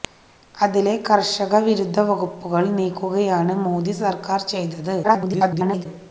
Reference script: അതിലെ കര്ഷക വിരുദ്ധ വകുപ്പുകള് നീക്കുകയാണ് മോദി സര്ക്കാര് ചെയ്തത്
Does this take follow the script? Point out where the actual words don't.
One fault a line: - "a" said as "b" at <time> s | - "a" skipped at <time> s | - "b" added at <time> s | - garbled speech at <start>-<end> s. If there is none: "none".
- garbled speech at 5.0-5.9 s